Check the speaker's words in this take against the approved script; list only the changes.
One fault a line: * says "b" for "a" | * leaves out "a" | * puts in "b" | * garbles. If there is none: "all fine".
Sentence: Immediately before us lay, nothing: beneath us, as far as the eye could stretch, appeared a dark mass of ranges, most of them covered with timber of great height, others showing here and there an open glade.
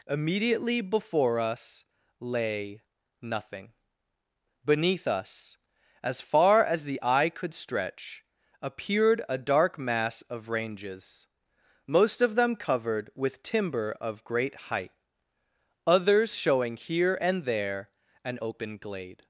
all fine